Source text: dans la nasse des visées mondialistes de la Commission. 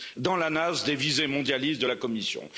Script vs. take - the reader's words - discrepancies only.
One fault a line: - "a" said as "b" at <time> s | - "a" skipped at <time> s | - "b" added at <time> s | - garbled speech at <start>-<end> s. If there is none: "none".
none